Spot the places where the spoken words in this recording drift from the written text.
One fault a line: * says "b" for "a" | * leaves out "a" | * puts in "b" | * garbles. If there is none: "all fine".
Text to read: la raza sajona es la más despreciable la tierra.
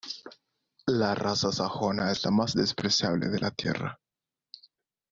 * puts in "de"